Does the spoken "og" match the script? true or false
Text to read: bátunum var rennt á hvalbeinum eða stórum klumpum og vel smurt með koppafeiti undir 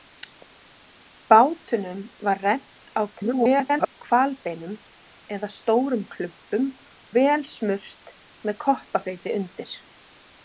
false